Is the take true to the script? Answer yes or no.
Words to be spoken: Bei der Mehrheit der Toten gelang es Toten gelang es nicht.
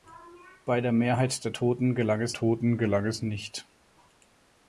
yes